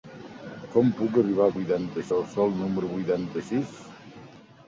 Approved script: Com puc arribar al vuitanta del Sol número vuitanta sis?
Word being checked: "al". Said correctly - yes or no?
yes